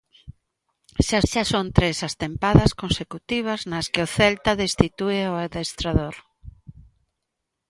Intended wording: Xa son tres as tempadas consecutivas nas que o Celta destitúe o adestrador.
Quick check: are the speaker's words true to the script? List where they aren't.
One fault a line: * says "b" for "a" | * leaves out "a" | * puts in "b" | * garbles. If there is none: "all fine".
* puts in "xa"